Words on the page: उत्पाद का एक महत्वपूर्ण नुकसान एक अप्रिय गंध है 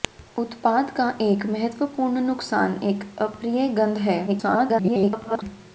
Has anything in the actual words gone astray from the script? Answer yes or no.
yes